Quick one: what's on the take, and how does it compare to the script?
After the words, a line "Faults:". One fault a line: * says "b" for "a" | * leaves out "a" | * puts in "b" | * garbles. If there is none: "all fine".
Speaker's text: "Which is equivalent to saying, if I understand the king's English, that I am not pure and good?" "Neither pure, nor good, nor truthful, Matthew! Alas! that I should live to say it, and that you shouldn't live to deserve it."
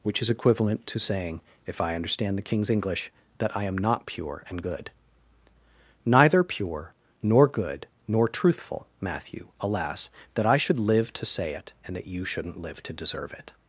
"Which is equivalent to saying, if I understand the king's English, that I am not pure and good?" "Neither pure, nor good, nor truthful, Matthew! Alas! that I should live to say it, and that you shouldn't live to deserve it."
Faults:
all fine